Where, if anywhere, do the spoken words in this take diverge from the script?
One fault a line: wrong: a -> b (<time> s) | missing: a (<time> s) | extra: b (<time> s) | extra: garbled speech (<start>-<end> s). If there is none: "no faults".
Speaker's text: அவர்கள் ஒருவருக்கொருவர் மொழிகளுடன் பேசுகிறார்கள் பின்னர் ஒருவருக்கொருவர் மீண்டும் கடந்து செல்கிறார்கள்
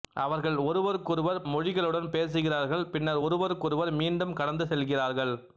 no faults